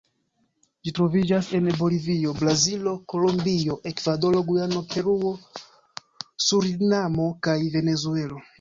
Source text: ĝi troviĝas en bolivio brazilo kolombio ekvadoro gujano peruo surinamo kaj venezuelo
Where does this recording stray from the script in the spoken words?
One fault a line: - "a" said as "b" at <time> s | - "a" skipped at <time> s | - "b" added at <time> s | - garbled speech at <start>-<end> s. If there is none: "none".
none